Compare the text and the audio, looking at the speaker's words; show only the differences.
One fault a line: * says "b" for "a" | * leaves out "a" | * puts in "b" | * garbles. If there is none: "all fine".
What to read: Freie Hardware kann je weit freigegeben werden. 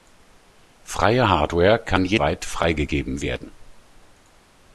all fine